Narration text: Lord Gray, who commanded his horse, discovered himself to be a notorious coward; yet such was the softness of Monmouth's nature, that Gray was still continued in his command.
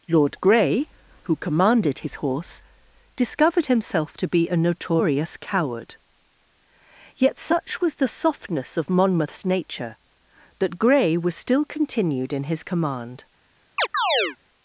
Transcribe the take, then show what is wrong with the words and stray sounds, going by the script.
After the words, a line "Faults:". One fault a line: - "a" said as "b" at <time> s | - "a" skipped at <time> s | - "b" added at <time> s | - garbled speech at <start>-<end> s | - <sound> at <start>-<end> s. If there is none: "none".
Lord Gray, who commanded his horse, discovered himself to be a notorious coward; yet such was the softness of Monmouth's nature, that Gray was still continued in his command.
Faults:
- chirp at 13.8-14.4 s